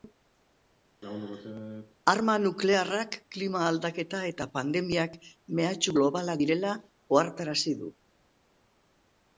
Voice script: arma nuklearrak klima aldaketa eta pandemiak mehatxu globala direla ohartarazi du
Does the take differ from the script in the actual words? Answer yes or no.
no